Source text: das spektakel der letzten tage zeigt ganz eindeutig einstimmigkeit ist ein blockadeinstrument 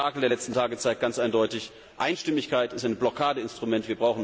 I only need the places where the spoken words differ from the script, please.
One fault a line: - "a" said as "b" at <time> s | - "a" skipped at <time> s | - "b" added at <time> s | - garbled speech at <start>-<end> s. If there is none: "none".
none